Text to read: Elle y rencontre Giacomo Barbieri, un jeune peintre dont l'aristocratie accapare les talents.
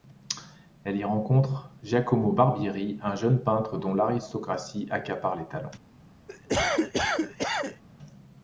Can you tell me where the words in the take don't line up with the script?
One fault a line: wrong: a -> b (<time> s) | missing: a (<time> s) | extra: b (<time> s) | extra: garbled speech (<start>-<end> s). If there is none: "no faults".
no faults